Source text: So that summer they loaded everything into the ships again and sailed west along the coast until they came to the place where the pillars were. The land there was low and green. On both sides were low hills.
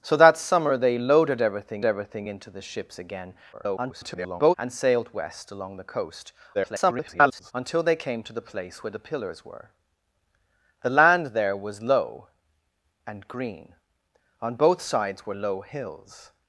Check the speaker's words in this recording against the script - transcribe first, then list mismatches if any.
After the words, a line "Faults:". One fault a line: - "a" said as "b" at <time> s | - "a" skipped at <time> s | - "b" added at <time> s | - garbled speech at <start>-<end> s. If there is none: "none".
So that summer they loaded everything everything into the ships again [garbled] and sailed west along the coast [garbled] until they came to the place where the pillars were. The land there was low and green. On both sides were low hills.
Faults:
- "everything" added at 1.8 s
- garbled speech at 3.5-4.5 s
- garbled speech at 6.5-7.5 s